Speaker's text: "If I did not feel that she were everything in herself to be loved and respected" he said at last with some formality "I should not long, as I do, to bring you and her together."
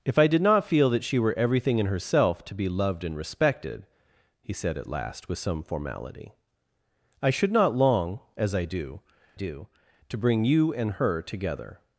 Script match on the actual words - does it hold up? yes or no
no